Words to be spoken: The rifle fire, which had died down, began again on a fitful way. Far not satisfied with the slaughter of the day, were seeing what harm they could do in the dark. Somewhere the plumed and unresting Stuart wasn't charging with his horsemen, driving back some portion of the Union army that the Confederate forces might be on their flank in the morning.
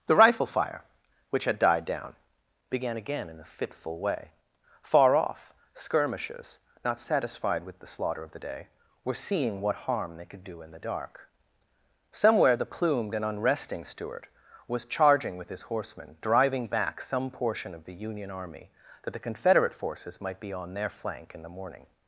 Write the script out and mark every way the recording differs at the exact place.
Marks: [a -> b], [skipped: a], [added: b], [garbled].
The rifle fire, which had died down, began again [on -> in] a fitful way. Far [added: off skirmishers] not satisfied with the slaughter of the day, were seeing what harm they could do in the dark. Somewhere the plumed and unresting Stuart [wasn't -> was] charging with his horsemen, driving back some portion of the Union army that the Confederate forces might be on their flank in the morning.